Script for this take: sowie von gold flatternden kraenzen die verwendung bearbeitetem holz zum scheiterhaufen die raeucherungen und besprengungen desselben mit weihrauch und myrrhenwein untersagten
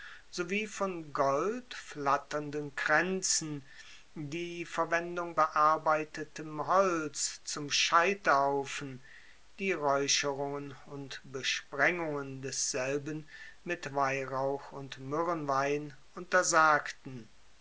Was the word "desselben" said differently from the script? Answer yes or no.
no